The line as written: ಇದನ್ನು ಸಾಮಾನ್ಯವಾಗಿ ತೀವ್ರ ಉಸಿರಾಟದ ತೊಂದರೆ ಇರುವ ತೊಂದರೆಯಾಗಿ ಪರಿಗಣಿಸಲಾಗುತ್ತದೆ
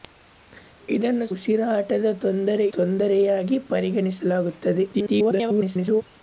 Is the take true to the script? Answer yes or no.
no